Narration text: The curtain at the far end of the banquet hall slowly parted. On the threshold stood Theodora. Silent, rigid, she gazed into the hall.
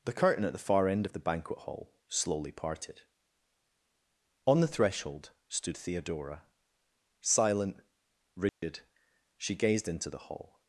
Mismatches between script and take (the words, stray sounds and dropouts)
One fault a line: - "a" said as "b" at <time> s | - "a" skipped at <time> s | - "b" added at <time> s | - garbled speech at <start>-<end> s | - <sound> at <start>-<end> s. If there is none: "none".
- dropout at 8.5-8.6 s